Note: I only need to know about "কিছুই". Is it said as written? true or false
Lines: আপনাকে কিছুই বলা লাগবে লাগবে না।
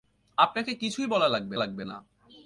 true